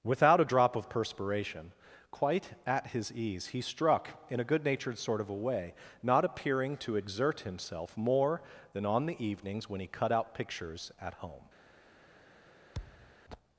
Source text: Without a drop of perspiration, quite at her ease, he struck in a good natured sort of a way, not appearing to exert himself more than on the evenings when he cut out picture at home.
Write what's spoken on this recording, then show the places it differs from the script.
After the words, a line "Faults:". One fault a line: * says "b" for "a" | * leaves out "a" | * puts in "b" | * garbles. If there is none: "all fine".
Without a drop of perspiration, quite at his ease, he struck in a good natured sort of a way, not appearing to exert himself more than on the evenings when he cut out pictures at home.
Faults:
* says "his" for "her"
* says "pictures" for "picture"